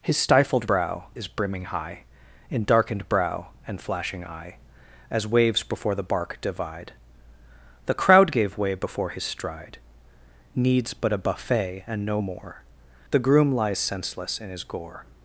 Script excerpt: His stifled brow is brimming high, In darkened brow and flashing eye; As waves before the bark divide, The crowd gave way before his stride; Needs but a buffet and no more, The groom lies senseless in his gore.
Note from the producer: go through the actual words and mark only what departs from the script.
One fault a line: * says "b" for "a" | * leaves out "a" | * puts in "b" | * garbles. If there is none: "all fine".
all fine